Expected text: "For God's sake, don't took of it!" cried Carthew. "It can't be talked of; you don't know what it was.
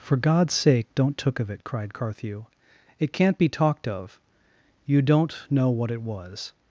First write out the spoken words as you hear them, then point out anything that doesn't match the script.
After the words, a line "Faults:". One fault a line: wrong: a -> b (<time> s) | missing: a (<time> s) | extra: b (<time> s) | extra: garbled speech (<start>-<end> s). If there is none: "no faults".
"For God's sake, don't took of it!" cried Carthew. "It can't be talked of; you don't know what it was.
Faults:
no faults